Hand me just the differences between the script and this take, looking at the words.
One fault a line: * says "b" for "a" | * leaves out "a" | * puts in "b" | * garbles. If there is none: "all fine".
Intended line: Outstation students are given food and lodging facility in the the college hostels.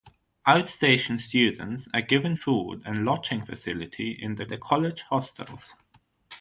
all fine